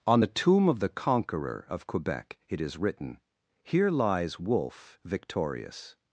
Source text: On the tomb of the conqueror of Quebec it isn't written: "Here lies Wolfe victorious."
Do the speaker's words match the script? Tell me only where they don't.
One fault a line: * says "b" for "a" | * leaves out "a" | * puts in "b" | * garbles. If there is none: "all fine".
* says "is" for "isn't"